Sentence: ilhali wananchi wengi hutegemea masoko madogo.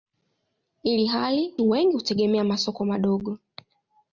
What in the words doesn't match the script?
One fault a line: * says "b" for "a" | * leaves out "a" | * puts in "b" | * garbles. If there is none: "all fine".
* leaves out "wananchi"